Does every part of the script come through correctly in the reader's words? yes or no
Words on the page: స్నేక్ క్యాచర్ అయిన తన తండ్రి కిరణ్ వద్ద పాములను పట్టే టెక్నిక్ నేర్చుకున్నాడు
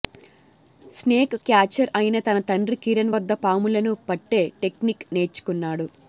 yes